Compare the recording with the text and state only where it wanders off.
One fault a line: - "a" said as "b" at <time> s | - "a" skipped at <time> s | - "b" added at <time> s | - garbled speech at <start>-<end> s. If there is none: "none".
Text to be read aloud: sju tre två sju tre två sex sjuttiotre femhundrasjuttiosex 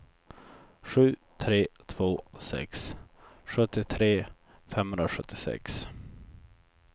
- "sju tre två" skipped at 2.2 s